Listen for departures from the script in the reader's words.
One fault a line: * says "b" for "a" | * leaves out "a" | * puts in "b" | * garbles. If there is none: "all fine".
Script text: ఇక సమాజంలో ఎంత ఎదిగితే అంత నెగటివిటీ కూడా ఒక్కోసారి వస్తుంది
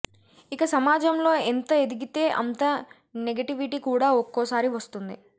all fine